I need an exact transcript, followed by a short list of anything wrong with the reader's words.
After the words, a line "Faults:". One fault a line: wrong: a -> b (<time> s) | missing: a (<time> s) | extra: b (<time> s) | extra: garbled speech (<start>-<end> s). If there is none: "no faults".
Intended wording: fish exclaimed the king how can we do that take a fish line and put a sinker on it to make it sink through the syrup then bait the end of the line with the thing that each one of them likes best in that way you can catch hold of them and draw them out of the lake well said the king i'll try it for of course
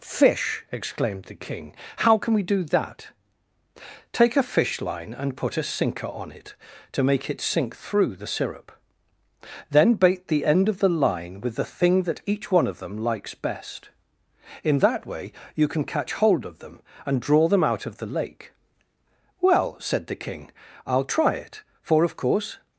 fish exclaimed the king how can we do that take a fish line and put a sinker on it to make it sink through the syrup then bait the end of the line with the thing that each one of them likes best in that way you can catch hold of them and draw them out of the lake well said the king i'll try it for of course
Faults:
no faults